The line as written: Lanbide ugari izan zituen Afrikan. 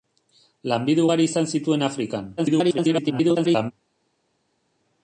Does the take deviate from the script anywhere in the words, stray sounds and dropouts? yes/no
yes